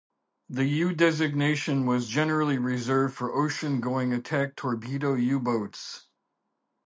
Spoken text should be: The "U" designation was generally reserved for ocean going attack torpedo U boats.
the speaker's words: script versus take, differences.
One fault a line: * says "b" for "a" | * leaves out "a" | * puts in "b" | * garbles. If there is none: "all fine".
all fine